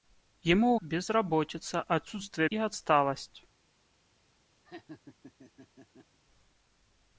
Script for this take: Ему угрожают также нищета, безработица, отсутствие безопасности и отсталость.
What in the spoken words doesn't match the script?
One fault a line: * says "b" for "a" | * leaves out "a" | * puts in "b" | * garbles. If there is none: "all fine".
* leaves out "угрожают также нищета"
* leaves out "безопасности"